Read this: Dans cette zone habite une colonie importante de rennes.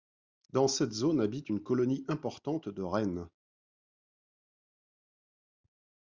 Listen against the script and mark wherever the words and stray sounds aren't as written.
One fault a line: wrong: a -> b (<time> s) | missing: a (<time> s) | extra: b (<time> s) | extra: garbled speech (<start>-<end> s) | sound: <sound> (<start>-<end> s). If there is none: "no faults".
no faults